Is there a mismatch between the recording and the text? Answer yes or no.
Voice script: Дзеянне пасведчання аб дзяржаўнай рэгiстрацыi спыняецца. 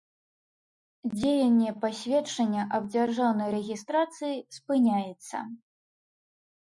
no